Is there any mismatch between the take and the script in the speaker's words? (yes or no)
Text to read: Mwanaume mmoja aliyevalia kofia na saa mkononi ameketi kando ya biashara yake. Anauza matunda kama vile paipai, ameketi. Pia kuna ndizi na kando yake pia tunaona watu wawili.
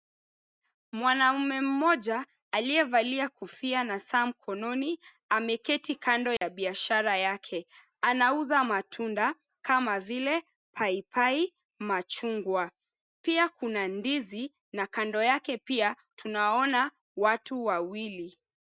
yes